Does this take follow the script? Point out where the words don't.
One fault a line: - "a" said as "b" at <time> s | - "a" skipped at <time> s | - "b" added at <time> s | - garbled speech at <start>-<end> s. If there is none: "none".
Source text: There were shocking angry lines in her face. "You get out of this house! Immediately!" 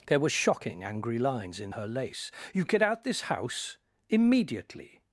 - "face" said as "lace" at 1.9 s
- "of" skipped at 3.0 s